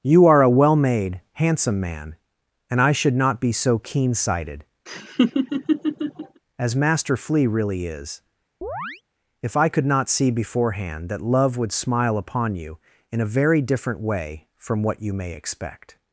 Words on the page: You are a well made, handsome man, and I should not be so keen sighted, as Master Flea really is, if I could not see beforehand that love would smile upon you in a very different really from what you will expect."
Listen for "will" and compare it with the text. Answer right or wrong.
wrong